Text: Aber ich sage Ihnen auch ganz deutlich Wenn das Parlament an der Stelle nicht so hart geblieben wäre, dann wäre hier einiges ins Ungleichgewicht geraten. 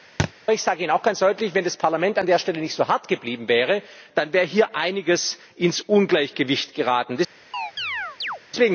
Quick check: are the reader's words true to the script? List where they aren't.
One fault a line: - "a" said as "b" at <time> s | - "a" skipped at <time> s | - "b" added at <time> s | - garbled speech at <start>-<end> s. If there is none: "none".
none